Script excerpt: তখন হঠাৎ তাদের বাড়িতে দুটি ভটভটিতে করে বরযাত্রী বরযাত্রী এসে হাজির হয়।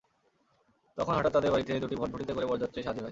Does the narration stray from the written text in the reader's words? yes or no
yes